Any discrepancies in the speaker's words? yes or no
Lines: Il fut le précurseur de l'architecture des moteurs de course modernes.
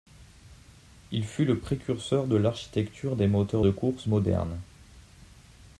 no